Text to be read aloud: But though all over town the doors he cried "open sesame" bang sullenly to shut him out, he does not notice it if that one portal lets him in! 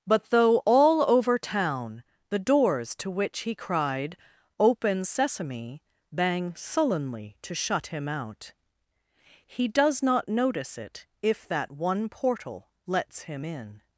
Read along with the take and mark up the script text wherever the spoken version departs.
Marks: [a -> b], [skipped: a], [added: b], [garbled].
But though all over town the doors [added: to which] he cried "open sesame" bang sullenly to shut him out, he does not notice it if that one portal lets him in!